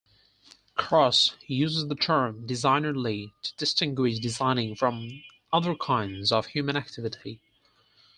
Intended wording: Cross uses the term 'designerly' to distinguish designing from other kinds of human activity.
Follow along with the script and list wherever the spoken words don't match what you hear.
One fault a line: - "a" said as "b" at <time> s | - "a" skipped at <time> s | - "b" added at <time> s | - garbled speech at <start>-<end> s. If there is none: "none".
none